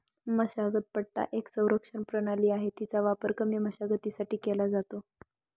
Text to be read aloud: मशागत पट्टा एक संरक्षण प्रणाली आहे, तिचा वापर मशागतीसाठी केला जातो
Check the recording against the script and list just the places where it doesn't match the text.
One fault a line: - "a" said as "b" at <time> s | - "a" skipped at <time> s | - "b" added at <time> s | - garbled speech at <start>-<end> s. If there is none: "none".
- "कमी" added at 3.4 s